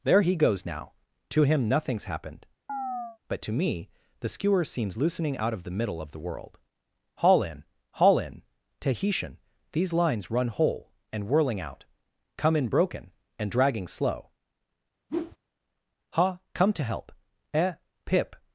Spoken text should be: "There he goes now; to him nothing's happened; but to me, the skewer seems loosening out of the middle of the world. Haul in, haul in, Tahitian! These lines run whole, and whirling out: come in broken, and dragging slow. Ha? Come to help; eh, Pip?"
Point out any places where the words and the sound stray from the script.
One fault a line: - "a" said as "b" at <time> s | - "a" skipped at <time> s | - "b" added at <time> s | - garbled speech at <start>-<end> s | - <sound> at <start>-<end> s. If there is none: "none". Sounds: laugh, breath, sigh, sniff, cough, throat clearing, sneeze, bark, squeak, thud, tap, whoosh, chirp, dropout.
- chirp at 2.7-3.2 s
- whoosh at 15.1-15.4 s